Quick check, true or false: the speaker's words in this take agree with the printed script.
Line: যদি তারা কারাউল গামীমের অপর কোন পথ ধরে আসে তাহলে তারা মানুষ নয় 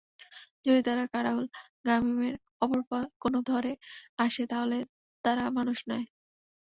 false